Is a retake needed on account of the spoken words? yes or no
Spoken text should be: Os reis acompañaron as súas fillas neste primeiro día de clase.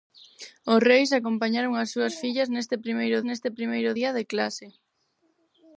yes